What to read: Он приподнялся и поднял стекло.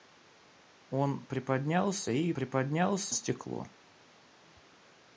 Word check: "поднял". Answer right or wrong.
wrong